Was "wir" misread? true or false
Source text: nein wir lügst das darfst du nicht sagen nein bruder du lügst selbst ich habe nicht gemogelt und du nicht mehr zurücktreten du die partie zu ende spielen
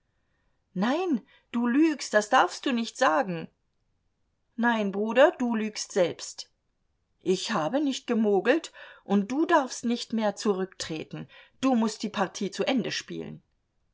true